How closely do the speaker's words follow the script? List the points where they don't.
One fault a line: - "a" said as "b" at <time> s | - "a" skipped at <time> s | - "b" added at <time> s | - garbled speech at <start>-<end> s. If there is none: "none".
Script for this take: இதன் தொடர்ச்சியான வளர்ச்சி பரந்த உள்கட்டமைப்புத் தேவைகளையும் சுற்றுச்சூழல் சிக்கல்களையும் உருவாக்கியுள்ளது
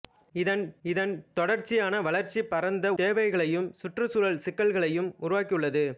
- "இதன்" added at 0.8 s
- "உள்கட்டமைப்புத்" skipped at 2.9 s